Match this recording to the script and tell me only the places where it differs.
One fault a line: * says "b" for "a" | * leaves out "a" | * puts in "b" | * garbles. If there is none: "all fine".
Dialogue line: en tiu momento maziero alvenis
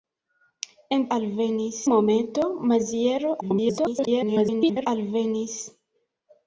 * says "alvenis" for "tiu"
* garbles